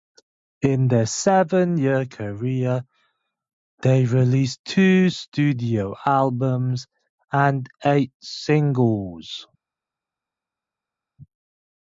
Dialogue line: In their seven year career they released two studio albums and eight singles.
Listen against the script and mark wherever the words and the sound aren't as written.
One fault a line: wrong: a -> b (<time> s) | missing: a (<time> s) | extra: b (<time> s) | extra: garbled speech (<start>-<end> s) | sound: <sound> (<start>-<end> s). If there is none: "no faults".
no faults